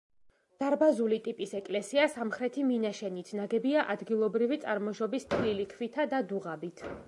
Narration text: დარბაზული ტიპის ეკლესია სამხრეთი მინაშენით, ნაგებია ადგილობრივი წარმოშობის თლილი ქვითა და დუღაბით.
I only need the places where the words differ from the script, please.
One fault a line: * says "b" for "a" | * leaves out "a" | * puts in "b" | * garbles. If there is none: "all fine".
all fine